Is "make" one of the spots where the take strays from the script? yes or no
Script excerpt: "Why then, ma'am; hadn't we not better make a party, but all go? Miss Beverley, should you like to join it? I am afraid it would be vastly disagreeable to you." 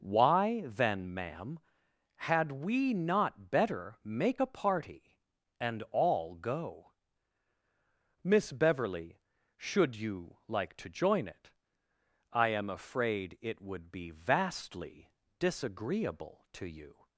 no